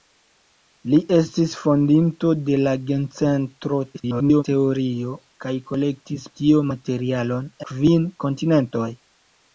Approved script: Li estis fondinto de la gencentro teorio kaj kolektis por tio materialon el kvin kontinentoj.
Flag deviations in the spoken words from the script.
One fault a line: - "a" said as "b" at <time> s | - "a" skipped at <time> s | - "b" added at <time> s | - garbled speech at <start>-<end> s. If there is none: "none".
- garbled speech at 3.9-4.4 s
- "por" skipped at 6.3 s
- "el" skipped at 7.5 s